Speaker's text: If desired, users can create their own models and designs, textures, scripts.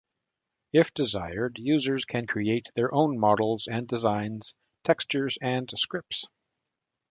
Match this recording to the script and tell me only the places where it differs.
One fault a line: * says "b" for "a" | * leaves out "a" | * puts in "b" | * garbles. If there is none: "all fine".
* puts in "and"